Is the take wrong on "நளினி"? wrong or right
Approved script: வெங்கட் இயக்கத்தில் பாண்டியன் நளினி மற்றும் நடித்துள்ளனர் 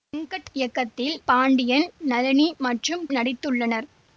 right